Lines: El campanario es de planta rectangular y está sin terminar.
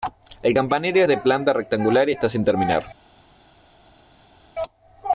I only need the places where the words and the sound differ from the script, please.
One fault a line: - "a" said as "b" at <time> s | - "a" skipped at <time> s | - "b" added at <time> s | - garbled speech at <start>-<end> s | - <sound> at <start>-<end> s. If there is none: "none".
none